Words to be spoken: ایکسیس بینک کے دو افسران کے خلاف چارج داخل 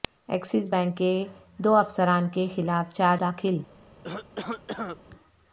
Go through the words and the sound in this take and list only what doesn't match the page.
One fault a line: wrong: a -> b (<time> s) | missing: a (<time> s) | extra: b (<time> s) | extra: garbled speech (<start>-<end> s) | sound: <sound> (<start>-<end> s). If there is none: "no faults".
sound: cough (4.0-5.0 s)